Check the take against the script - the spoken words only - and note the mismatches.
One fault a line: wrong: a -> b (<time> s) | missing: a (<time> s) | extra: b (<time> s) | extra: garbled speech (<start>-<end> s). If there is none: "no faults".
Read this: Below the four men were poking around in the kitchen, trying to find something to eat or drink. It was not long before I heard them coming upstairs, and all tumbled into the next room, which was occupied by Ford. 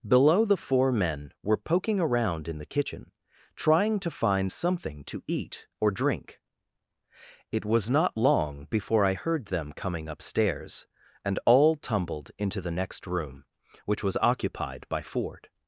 no faults